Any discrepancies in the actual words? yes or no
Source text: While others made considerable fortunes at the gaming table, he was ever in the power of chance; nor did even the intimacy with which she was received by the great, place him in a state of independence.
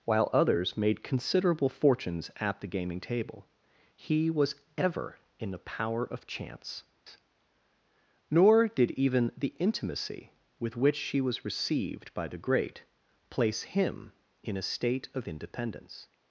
no